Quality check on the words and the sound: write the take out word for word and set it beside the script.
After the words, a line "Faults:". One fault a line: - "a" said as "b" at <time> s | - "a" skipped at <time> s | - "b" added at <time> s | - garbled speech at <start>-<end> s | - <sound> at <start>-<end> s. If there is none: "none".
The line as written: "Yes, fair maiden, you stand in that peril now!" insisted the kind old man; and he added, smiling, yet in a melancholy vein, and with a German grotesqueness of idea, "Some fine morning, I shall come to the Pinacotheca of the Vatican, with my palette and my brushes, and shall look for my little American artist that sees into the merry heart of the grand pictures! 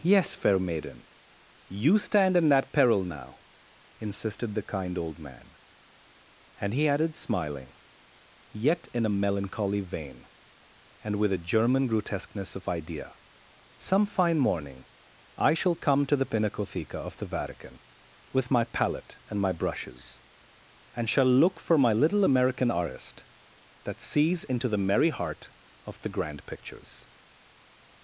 "Yes, fair maiden, you stand in that peril now!" insisted the kind old man; and he added, smiling, yet in a melancholy vein, and with a German grotesqueness of idea, "Some fine morning, I shall come to the Pinacotheca of the Vatican, with my palette and my brushes, and shall look for my little American artist that sees into the merry heart of the grand pictures!
Faults:
none